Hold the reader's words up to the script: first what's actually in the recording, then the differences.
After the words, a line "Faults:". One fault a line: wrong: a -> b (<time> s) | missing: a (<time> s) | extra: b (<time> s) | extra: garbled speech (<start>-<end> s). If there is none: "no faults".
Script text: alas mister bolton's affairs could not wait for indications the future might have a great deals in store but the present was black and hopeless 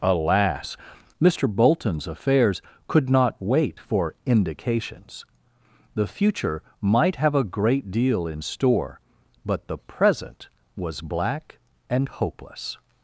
alas mister bolton's affairs could not wait for indications the future might have a great deal in store but the present was black and hopeless
Faults:
wrong: deals -> deal (7.9 s)